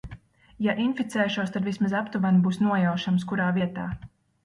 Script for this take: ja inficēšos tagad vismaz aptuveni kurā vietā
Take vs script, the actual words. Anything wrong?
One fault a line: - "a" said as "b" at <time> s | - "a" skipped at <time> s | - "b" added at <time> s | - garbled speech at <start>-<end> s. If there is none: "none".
- "tagad" said as "tad" at 1.6 s
- "būs nojaušams" added at 2.5 s